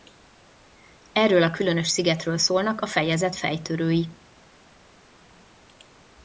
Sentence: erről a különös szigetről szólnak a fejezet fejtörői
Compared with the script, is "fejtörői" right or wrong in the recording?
right